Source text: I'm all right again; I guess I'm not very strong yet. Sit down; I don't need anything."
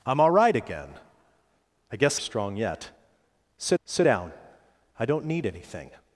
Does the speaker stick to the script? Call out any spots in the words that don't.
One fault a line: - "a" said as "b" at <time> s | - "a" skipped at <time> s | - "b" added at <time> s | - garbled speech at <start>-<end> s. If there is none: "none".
- "I'm not very" skipped at 2.2 s
- "sit" added at 3.8 s